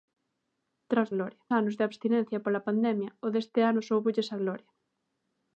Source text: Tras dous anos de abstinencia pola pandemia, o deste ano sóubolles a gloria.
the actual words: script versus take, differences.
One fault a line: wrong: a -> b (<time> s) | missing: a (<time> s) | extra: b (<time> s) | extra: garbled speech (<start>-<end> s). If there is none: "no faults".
wrong: dous -> gloria (1.1 s)